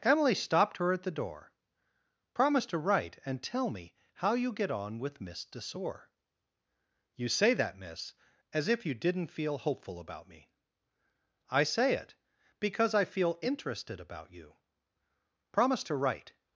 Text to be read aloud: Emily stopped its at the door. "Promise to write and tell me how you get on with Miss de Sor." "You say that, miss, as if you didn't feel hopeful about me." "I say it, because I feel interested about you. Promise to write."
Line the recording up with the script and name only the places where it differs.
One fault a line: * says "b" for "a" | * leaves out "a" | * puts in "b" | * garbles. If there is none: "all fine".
* says "her" for "its"